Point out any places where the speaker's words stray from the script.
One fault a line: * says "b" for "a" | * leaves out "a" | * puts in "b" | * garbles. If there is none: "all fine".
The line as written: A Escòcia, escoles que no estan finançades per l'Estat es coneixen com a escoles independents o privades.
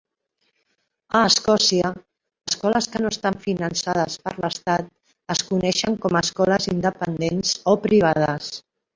all fine